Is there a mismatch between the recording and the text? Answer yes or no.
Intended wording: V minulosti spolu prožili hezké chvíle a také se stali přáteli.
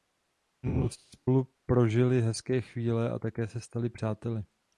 no